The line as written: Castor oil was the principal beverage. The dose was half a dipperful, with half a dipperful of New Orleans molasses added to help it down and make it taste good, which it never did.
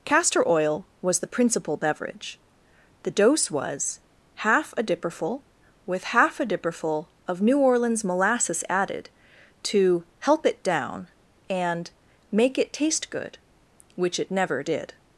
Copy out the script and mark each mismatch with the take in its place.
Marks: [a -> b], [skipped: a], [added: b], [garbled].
Castor oil was the principal beverage. The dose was half a dipperful, with half a dipperful of New Orleans molasses added to help it down and make it taste good, which it never did.